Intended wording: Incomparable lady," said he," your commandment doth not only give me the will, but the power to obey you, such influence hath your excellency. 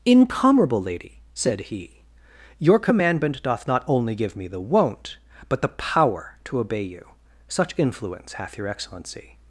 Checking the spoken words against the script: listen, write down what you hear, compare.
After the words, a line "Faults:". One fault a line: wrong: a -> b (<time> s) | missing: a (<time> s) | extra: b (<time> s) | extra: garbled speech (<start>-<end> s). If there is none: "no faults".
Incomparable lady," said he," your commandment doth not only give me the won't, but the power to obey you, such influence hath your excellency.
Faults:
wrong: will -> won't (4.6 s)